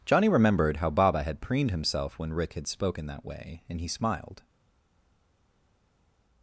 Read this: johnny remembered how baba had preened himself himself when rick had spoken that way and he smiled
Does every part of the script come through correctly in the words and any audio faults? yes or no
no